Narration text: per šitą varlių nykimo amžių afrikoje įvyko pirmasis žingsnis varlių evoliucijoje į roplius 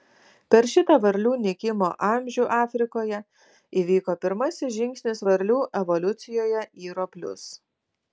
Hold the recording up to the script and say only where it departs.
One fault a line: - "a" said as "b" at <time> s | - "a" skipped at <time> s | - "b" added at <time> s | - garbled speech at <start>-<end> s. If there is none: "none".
none